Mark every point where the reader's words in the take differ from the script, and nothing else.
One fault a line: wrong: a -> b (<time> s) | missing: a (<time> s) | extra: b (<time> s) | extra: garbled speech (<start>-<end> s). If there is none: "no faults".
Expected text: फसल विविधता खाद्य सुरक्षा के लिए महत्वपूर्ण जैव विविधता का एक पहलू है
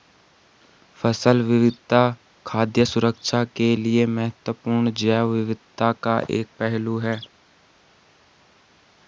no faults